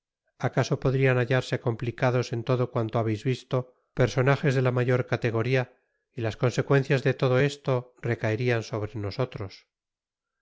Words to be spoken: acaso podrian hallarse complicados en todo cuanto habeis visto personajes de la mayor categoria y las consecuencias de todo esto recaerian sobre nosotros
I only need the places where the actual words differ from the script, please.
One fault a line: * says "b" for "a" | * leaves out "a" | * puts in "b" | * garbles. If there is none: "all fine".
all fine